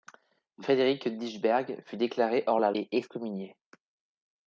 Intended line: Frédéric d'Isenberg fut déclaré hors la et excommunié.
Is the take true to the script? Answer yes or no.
yes